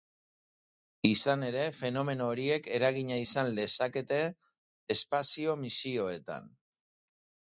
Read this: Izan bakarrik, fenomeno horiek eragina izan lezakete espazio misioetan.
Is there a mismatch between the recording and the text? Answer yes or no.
yes